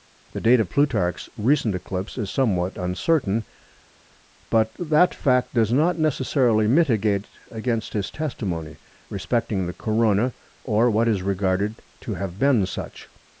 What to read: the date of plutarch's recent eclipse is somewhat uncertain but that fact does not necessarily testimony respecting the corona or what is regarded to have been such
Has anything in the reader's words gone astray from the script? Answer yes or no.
yes